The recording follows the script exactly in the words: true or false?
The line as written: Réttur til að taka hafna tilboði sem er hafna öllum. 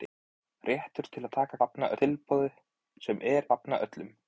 true